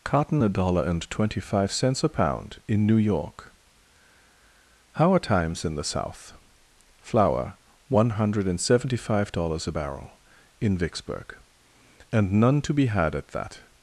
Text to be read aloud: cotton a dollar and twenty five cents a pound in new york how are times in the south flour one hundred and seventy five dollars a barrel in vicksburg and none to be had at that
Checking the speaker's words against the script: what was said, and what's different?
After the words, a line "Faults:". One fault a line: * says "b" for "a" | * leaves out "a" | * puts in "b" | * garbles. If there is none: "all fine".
cotton a dollar and twenty five cents a pound in new york how are times in the south flour one hundred and seventy five dollars a barrel in vicksburg and none to be had at that
Faults:
all fine